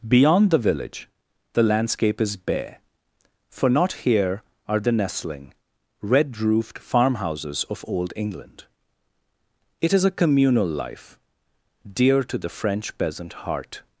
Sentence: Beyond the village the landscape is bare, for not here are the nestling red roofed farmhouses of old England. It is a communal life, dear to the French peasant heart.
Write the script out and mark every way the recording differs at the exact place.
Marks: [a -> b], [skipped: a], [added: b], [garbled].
Beyond the village the landscape is bare, for not here are the nestling red roofed farmhouses of old England. It is a communal life, dear to the French peasant heart.